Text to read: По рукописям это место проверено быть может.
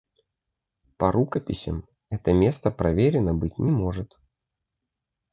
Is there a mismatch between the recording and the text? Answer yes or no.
yes